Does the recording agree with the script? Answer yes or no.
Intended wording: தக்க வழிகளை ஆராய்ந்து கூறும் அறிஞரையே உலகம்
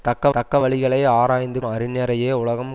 no